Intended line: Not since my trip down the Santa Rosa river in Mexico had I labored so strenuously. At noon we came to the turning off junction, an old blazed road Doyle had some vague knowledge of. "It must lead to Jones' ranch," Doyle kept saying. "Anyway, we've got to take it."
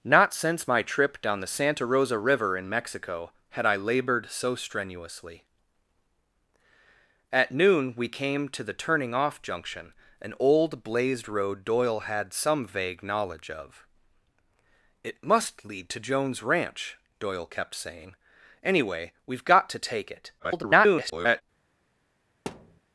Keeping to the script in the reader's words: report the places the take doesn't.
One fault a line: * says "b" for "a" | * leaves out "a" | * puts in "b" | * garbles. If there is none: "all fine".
* garbles